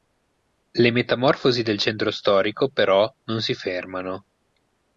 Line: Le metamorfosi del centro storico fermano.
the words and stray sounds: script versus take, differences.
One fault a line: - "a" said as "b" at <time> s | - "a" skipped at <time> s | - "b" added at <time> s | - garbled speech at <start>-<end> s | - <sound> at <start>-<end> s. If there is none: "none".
- "però non si" added at 2.7 s